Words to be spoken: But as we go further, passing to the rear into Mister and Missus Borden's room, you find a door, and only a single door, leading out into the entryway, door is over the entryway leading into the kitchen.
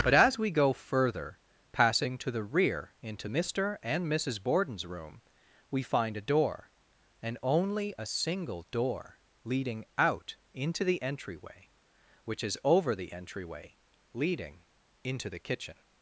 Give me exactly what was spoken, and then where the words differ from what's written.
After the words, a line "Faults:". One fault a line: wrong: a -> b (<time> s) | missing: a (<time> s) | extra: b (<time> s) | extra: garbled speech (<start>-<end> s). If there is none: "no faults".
But as we go further, passing to the rear into Mister and Missus Borden's room, we find a door, and only a single door, leading out into the entryway, which is over the entryway leading into the kitchen.
Faults:
wrong: you -> we (5.7 s)
wrong: door -> which (12.3 s)